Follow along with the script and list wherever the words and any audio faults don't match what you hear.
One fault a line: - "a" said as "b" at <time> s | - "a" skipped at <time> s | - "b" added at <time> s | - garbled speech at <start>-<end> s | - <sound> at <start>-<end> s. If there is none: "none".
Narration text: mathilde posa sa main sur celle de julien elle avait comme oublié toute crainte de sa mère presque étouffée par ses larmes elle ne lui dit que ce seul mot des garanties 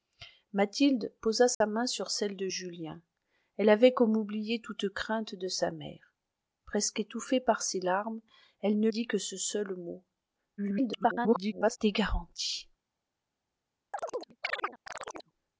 - dropout at 1.5-1.6 s
- "lui" skipped at 8.9 s
- garbled speech at 10.6-11.8 s
- chirp at 13.9-15.3 s